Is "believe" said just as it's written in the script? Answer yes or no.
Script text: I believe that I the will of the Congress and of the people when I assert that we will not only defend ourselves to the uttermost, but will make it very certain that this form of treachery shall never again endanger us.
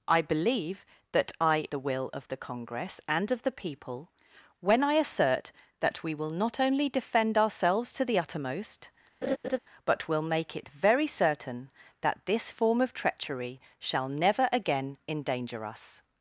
yes